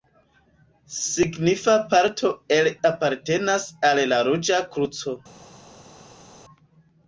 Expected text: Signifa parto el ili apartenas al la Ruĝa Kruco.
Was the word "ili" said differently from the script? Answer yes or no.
yes